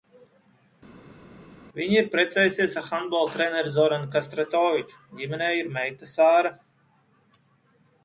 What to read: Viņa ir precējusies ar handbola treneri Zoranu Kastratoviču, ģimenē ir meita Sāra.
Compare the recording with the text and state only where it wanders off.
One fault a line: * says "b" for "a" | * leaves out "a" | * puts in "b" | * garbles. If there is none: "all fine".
all fine